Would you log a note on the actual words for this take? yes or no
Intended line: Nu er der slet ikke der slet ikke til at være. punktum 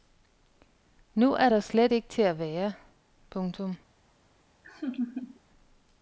yes